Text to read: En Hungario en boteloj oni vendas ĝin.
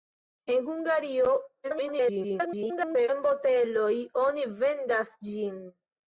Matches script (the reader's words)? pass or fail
fail